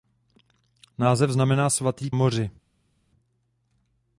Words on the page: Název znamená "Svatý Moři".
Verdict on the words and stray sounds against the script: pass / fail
pass